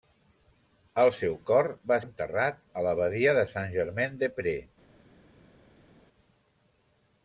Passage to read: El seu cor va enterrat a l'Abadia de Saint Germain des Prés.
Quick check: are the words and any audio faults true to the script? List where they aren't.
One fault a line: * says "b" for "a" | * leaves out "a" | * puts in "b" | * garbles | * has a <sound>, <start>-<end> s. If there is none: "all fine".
all fine